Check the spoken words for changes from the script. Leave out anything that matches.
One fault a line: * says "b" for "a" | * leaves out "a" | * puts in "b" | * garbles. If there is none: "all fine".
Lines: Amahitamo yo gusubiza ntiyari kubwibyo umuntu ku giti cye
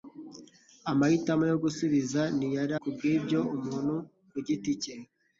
all fine